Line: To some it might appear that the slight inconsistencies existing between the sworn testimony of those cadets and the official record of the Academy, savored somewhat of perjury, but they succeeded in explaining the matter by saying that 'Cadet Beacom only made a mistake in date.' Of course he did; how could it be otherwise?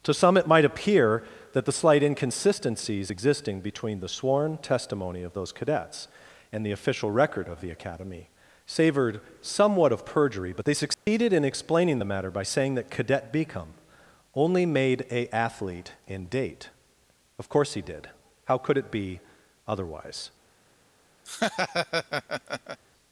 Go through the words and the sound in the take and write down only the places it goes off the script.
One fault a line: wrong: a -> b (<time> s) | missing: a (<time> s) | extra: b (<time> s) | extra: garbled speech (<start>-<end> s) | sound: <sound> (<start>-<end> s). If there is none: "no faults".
sound: dropout (10.9-11.1 s)
wrong: mistake -> athlete (15.3 s)
sound: laugh (21.2-22.8 s)